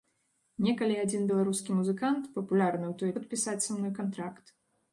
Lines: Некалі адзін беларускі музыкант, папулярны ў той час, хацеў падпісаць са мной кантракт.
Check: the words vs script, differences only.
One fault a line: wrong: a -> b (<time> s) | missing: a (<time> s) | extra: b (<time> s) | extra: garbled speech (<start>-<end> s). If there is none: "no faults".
missing: час хацеў (3.1 s)